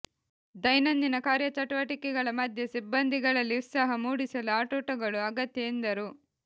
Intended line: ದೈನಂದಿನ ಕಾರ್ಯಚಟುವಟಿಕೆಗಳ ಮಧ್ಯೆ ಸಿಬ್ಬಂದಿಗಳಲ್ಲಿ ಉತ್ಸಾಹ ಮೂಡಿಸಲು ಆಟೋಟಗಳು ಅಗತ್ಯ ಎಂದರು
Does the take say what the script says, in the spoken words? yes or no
yes